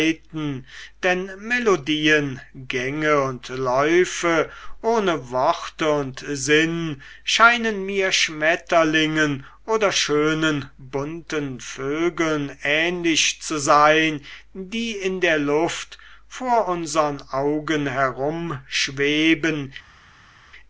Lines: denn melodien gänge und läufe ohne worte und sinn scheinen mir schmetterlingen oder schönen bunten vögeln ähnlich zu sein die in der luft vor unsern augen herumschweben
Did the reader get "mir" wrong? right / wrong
right